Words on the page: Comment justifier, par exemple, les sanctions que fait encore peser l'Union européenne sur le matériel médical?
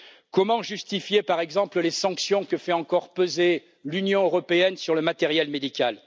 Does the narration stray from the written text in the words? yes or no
no